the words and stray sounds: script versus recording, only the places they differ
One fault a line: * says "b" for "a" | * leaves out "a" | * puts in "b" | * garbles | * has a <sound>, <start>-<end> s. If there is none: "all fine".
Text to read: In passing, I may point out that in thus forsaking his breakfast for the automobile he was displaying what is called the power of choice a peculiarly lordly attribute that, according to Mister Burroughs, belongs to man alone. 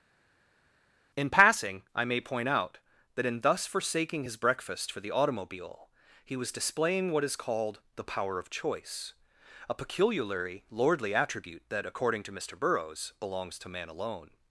all fine